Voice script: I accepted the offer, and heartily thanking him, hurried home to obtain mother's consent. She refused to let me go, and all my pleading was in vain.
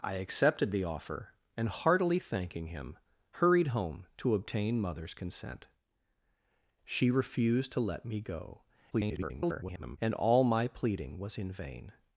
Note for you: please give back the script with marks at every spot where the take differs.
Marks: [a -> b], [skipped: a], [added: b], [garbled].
I accepted the offer, and heartily thanking him, hurried home to obtain mother's consent. She refused to let me go, [garbled] and all my pleading was in vain.